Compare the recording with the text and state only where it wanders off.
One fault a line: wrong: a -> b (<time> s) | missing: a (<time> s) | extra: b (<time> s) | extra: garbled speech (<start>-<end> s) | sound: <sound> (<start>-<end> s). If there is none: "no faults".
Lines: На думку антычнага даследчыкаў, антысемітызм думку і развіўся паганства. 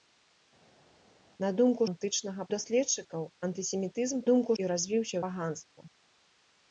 no faults